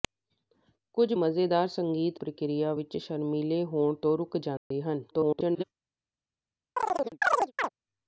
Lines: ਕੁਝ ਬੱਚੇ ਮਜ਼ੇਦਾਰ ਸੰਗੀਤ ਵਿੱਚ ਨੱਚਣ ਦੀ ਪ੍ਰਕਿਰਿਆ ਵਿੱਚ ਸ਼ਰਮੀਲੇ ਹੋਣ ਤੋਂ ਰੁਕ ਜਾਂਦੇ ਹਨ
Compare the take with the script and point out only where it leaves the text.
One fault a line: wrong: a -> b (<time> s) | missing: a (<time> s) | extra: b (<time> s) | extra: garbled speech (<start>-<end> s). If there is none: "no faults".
missing: ਬੱਚੇ (1.1 s)
missing: ਵਿੱਚ ਨੱਚਣ ਦੀ (2.2 s)
extra: garbled speech (5.1-5.6 s)